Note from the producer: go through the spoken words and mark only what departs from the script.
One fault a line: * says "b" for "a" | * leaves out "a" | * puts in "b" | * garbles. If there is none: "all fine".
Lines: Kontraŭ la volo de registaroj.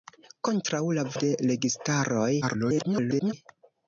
* leaves out "volo"
* garbles